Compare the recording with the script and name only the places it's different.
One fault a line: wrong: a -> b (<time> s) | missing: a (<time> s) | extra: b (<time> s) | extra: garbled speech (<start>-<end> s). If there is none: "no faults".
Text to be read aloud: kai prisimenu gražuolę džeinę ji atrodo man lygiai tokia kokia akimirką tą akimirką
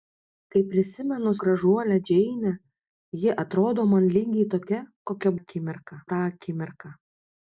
no faults